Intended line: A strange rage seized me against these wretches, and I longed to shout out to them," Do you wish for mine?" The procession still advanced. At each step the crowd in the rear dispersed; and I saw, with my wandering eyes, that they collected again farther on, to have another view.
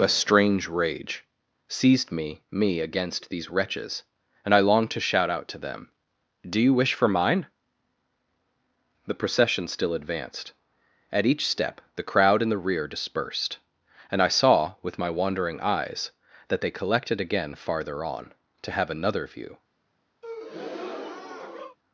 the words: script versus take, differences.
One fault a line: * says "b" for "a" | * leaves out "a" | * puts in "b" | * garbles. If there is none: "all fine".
* puts in "me"